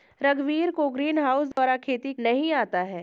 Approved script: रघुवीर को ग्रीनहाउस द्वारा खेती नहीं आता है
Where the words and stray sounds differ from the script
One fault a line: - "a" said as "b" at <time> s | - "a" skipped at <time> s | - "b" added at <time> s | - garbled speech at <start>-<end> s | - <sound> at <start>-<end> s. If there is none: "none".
- dropout at 1.5-1.6 s